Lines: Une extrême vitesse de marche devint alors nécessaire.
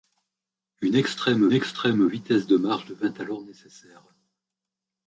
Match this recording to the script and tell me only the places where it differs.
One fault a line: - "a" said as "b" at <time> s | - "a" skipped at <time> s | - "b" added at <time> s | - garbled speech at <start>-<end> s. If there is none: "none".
- "extrême" added at 1.5 s